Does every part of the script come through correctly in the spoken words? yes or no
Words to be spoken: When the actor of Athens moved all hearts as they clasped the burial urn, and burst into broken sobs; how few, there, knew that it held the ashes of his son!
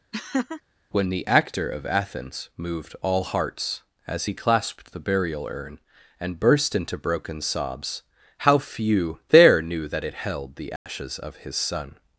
no